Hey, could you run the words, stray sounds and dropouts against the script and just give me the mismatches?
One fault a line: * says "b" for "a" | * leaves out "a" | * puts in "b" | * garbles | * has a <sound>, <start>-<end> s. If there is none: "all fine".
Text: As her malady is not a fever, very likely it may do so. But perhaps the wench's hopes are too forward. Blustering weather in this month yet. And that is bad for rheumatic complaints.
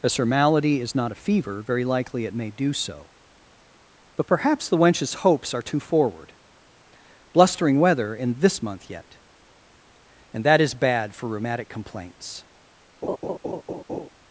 * has a laugh, 13.0-14.1 s